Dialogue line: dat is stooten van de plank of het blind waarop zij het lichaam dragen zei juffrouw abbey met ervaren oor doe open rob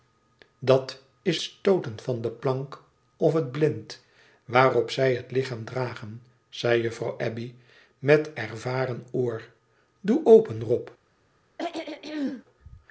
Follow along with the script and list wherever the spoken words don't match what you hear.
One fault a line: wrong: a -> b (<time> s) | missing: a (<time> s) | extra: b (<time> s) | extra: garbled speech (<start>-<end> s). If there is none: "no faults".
no faults